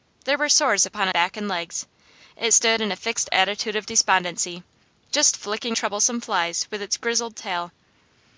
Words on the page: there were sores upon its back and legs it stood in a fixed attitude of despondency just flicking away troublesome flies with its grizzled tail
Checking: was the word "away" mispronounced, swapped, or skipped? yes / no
yes